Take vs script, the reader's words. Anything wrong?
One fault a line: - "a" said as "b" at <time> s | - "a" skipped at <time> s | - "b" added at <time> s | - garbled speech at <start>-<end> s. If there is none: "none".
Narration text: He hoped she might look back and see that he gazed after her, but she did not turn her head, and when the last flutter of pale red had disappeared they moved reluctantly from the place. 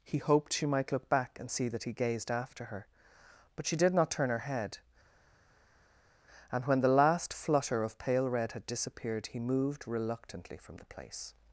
- "they" said as "he" at 9.3 s